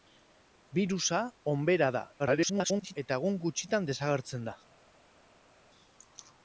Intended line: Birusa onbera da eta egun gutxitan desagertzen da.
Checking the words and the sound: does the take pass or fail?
fail